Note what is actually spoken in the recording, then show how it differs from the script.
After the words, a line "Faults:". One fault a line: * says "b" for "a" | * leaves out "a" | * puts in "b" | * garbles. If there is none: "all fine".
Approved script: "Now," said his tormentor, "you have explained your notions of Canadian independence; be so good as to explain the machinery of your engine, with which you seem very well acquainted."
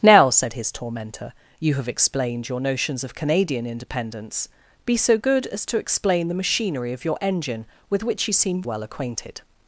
"Now," said his tormentor, "you have explained your notions of Canadian independence; be so good as to explain the machinery of your engine, with which you seem well acquainted."
Faults:
* leaves out "very"